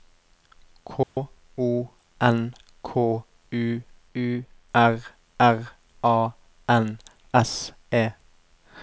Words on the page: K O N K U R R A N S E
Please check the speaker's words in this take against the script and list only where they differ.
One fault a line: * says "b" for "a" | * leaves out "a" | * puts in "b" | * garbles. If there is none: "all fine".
* puts in "U"